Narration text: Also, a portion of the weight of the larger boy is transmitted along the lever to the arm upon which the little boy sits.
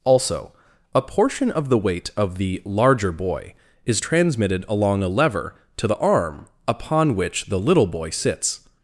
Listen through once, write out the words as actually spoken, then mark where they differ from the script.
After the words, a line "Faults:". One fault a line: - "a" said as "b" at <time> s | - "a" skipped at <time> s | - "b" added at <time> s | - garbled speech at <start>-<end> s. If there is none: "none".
Also, a portion of the weight of the larger boy is transmitted along a lever to the arm upon which the little boy sits.
Faults:
- "the" said as "a" at 5.0 s